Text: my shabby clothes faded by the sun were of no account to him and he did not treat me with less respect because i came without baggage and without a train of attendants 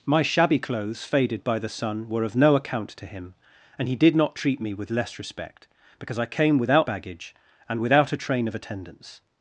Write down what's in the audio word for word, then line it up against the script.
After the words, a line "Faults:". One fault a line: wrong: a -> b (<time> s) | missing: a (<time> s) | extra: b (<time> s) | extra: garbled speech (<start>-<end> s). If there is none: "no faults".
my shabby clothes faded by the sun were of no account to him and he did not treat me with less respect because i came without baggage and without a train of attendants
Faults:
no faults